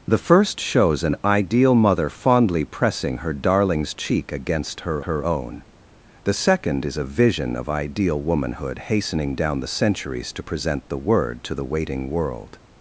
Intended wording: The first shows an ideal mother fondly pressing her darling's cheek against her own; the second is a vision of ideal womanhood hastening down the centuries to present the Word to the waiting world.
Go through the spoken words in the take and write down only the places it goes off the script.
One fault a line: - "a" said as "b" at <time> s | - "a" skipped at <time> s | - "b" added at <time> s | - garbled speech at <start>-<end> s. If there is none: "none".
- "her" added at 5.0 s